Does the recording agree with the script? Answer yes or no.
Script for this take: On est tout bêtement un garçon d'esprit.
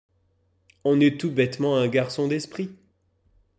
yes